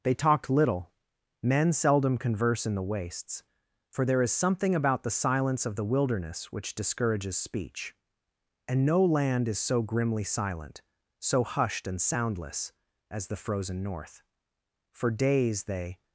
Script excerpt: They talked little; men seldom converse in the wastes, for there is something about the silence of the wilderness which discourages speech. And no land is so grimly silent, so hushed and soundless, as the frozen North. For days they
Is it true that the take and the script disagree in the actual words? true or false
false